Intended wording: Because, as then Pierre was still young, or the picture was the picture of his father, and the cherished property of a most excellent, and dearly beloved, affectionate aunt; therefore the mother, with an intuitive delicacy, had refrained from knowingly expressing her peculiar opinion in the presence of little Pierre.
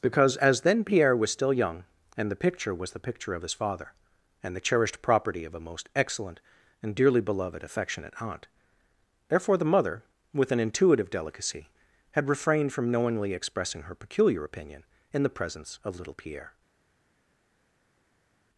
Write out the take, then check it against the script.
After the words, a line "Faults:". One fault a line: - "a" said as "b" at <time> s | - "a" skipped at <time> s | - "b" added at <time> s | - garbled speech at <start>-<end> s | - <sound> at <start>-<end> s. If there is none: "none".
Because, as then Pierre was still young, and the picture was the picture of his father, and the cherished property of a most excellent, and dearly beloved, affectionate aunt; therefore the mother, with an intuitive delicacy, had refrained from knowingly expressing her peculiar opinion in the presence of little Pierre.
Faults:
- "or" said as "and" at 2.2 s